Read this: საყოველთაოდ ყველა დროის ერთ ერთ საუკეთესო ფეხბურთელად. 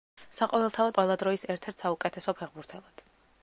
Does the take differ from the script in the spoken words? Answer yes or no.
no